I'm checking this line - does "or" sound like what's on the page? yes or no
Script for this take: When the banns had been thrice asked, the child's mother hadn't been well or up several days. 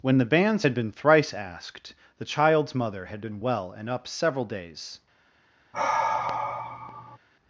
no